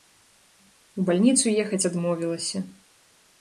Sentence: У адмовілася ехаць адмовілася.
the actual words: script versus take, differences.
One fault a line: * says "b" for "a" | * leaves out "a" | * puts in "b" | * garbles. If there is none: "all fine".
* says "бальніцу" for "адмовілася"